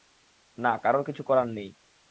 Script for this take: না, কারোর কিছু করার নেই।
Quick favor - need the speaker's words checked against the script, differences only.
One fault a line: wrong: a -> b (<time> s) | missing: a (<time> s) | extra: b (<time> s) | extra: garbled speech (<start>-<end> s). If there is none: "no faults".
no faults